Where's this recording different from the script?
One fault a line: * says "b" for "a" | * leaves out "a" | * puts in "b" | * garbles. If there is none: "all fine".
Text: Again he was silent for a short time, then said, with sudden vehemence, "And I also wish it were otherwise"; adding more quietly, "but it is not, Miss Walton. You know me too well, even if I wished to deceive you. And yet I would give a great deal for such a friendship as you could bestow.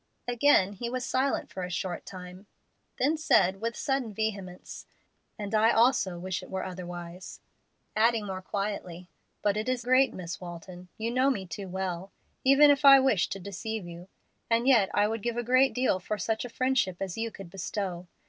* says "great" for "not"